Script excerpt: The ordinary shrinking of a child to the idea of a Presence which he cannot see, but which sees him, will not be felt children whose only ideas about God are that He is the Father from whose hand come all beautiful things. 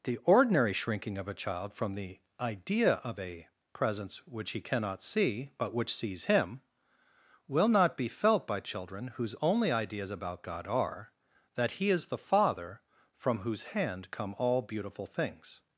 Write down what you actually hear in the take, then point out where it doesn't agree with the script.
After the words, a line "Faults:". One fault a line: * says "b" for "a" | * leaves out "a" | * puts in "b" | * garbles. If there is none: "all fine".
The ordinary shrinking of a child from the idea of a Presence which he cannot see, but which sees him, will not be felt by children whose only ideas about God are that He is the Father from whose hand come all beautiful things.
Faults:
* says "from" for "to"
* puts in "by"